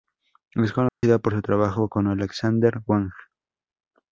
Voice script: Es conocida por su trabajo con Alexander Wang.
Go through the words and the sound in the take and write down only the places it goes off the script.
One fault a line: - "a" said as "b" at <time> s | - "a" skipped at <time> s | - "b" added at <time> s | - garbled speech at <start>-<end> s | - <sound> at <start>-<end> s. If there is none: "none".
- dropout at 0.9-1.0 s